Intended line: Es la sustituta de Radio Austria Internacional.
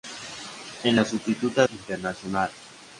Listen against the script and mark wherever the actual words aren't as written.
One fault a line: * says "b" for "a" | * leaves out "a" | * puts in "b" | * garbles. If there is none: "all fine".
* leaves out "de Radio Austria"